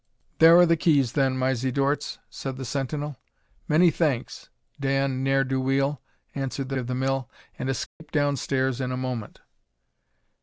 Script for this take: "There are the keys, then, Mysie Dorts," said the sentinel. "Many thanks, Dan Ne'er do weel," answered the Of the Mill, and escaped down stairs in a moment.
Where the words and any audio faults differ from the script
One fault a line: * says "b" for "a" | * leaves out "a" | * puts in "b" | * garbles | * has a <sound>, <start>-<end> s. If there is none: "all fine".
* has a dropout, 7.9-8.0 s